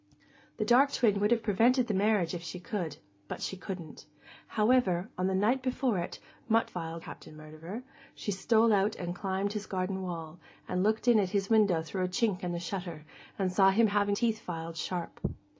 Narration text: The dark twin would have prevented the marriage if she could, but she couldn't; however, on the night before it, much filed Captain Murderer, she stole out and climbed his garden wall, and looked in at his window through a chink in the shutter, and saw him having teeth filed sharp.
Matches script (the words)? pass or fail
pass